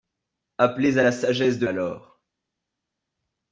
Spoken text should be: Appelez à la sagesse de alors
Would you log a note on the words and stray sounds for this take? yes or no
no